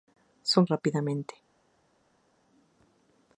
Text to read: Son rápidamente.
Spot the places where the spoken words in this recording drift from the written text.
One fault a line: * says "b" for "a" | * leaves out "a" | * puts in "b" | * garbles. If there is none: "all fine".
all fine